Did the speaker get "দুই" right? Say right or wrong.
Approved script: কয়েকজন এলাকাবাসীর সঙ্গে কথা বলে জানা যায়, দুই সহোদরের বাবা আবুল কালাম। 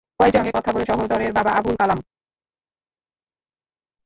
wrong